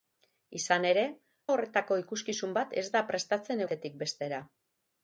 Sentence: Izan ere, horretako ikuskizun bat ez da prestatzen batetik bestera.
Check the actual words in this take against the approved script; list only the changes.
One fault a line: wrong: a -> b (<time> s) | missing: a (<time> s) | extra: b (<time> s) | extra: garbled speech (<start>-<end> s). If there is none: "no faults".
no faults